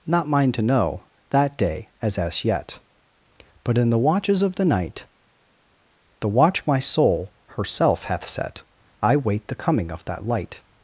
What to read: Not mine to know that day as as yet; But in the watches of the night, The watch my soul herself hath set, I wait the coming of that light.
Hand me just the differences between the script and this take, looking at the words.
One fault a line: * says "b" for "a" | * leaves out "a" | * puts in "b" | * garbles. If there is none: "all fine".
all fine